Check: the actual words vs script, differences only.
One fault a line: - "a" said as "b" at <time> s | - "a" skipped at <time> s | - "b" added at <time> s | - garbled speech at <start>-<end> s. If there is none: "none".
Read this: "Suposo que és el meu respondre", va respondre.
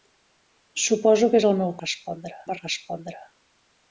none